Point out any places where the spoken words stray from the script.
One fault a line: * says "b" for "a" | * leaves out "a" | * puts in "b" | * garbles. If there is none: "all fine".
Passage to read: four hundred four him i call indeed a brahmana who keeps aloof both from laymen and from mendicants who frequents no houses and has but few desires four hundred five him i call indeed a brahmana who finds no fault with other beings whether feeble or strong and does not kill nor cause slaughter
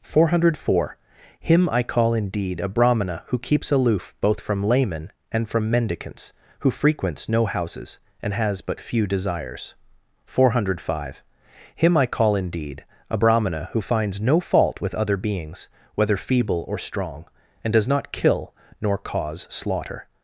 all fine